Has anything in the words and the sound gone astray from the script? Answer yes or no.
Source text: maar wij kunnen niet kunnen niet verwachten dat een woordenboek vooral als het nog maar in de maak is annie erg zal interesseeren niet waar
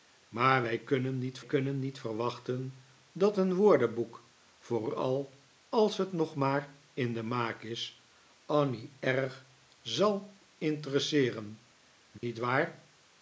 yes